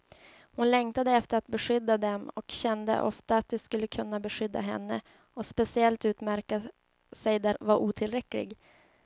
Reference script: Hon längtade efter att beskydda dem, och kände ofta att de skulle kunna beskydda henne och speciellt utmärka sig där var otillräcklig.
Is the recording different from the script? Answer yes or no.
no